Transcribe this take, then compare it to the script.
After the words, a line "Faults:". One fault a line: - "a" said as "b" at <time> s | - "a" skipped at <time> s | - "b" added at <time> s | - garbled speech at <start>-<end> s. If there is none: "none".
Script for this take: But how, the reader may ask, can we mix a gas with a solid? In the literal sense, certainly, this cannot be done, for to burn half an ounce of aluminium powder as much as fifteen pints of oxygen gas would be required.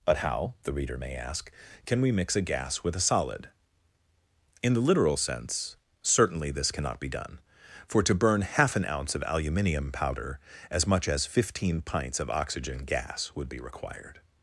But how, the reader may ask, can we mix a gas with a solid? In the literal sense, certainly, this cannot be done, for to burn half an ounce of aluminium powder as much as fifteen pints of oxygen gas would be required.
Faults:
none